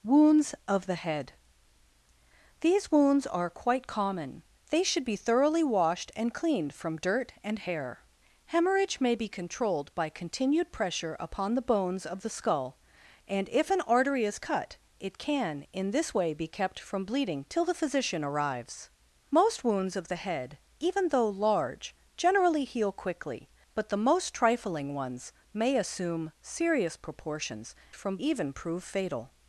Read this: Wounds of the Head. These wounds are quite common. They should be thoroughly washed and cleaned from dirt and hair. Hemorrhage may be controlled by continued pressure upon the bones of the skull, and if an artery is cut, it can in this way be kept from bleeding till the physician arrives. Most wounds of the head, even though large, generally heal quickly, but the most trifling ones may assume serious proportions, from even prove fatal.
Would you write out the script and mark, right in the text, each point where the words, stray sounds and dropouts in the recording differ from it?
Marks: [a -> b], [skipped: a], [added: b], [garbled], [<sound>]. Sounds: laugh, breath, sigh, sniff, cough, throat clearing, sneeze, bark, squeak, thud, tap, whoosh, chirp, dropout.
Wounds of the Head. These wounds are quite common. They should be thoroughly washed and cleaned from dirt and hair. Hemorrhage may be controlled by continued pressure upon the bones of the skull, and if an artery is cut, it can in this way be kept from bleeding till the physician arrives. Most wounds of the head, even though large, generally heal quickly, but the most trifling ones may assume serious proportions, from even prove fatal.